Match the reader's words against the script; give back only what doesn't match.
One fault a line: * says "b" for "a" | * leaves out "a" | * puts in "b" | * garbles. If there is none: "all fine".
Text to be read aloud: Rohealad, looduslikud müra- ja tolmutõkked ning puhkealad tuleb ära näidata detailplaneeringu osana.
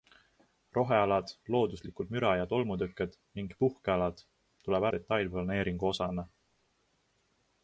* leaves out "ära näidata"